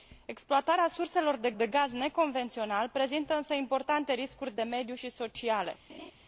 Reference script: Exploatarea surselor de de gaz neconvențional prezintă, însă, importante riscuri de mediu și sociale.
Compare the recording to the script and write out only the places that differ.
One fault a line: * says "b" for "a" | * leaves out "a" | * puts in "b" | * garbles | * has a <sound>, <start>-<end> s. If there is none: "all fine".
* has a laugh, 5.9-6.1 s